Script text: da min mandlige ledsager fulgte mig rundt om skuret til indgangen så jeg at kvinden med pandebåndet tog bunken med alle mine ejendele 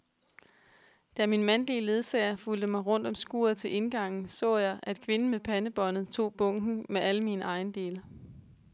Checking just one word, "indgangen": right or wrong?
right